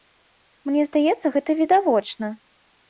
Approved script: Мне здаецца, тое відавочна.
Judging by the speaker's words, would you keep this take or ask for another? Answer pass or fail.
fail